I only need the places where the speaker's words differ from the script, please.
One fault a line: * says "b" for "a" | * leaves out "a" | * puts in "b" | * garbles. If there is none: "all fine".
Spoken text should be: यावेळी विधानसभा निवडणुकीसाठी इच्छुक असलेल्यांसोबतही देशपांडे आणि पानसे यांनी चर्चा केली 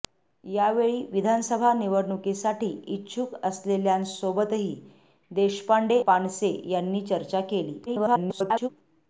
* leaves out "आणि"
* garbles